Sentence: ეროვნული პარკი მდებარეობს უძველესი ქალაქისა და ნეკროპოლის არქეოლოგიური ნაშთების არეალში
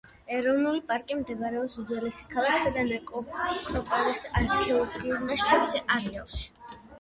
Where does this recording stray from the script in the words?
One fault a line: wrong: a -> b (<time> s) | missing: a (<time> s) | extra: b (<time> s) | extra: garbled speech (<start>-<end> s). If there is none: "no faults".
no faults